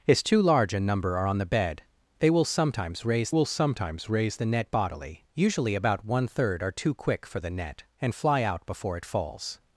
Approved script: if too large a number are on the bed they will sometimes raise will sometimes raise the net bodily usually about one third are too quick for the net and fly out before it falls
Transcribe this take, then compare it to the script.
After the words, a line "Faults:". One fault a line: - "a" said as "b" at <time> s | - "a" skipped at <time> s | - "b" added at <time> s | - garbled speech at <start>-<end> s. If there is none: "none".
if too large a number are on the bed they will sometimes raise will sometimes raise the net bodily usually about one third are too quick for the net and fly out before it falls
Faults:
none